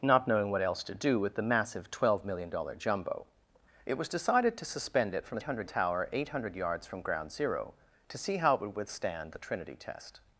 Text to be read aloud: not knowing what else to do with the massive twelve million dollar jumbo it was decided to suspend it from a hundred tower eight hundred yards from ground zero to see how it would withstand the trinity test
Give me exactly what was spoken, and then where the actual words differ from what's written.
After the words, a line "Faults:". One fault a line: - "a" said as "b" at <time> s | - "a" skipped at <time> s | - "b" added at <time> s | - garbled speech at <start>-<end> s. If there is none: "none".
not knowing what else to do with the massive twelve million dollar jumbo it was decided to suspend it from a hundred tower eight hundred yards from ground zero to see how it would withstand the trinity test
Faults:
none